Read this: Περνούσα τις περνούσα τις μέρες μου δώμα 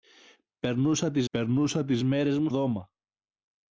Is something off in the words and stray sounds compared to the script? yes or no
no